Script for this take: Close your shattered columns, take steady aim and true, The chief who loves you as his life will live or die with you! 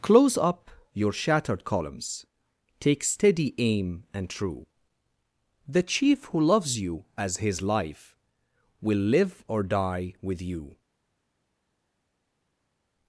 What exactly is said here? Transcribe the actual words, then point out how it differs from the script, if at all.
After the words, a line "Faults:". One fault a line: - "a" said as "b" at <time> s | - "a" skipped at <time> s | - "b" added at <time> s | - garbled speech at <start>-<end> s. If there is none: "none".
Close up your shattered columns, take steady aim and true, The chief who loves you as his life will live or die with you!
Faults:
- "up" added at 0.3 s